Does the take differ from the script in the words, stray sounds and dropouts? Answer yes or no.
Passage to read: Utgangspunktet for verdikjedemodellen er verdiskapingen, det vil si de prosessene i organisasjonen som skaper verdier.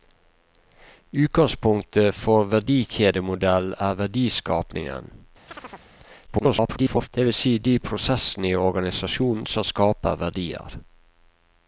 yes